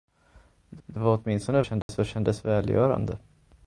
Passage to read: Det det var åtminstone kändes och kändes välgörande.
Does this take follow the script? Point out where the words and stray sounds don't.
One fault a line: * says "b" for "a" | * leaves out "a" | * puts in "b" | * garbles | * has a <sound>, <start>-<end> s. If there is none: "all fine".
* has a dropout, 1.8-1.9 s